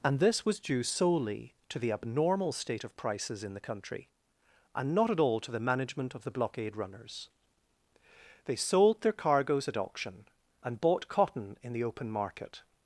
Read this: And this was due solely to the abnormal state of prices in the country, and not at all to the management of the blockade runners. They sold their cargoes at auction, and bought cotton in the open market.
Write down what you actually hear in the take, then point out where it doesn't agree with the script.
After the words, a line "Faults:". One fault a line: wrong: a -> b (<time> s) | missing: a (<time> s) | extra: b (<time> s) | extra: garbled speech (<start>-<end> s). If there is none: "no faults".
And this was due solely to the abnormal state of prices in the country, and not at all to the management of the blockade runners. They sold their cargoes at auction, and bought cotton in the open market.
Faults:
no faults